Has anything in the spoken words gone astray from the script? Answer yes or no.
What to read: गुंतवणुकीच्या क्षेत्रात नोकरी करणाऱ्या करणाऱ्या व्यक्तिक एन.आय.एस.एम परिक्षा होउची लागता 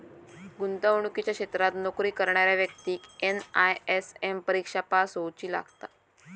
yes